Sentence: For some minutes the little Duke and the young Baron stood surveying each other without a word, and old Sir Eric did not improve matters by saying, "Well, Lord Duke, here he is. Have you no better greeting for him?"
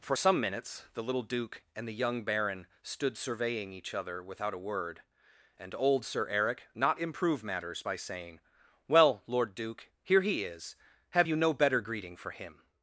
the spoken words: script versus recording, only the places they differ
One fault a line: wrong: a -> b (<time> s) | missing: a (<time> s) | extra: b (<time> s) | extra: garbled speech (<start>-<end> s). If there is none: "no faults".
missing: did (6.7 s)